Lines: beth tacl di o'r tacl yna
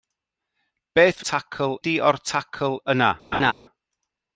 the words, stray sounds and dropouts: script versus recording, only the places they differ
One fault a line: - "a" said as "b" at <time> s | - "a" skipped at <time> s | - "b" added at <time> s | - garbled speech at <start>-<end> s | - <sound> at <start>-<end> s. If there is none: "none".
- laugh at 3.3-3.5 s